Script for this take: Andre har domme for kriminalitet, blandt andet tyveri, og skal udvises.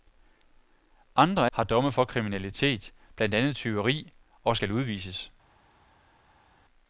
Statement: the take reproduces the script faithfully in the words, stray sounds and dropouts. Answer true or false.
true